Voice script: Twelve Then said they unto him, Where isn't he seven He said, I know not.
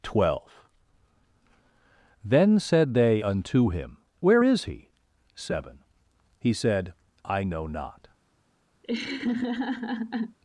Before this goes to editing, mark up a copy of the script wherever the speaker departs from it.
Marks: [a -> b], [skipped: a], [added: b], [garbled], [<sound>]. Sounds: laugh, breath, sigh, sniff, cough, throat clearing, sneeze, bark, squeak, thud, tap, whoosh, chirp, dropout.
Twelve Then said they unto him, Where [isn't -> is] he seven He said, I know not. [laugh]